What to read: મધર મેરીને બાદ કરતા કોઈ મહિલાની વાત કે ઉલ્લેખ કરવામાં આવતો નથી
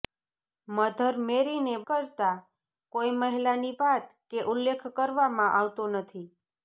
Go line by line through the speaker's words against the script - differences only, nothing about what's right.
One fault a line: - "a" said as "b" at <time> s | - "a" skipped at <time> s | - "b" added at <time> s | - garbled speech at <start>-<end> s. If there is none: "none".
- "બાદ" skipped at 1.8 s